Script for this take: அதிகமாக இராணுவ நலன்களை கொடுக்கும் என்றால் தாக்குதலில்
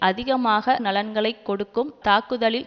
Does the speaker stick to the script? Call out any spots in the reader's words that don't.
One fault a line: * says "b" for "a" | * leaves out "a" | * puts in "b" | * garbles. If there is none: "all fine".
* leaves out "இராணுவ"
* leaves out "என்றால்"